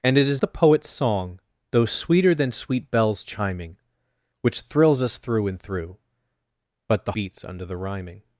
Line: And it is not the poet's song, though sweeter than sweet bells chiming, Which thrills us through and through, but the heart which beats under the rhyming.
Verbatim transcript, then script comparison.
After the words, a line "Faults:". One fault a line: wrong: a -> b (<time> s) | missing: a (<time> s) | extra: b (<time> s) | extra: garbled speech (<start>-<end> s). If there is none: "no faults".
And it is the poet's song, though sweeter than sweet bells chiming, Which thrills us through and through, but the beats under the rhyming.
Faults:
missing: not (0.4 s)
missing: heart which (7.1 s)